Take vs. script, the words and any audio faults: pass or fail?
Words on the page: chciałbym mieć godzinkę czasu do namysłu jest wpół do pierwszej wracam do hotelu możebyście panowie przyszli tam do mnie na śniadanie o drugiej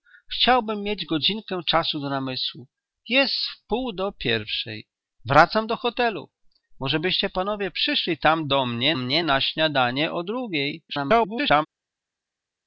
fail